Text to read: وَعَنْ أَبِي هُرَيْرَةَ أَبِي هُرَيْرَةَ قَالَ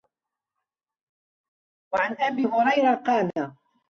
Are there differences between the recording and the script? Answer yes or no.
yes